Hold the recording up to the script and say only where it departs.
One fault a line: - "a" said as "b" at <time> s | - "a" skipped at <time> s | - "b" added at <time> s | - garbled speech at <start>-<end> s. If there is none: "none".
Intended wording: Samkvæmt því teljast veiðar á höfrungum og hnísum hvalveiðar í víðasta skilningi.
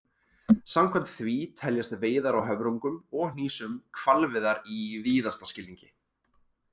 none